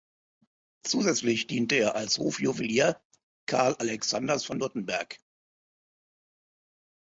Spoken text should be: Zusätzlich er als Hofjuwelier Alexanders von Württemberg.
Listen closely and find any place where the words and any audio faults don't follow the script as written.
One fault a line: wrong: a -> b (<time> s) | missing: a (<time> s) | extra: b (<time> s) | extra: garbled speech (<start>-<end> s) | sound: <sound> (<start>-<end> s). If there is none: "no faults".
extra: diente (1.4 s)
extra: Karl (3.5 s)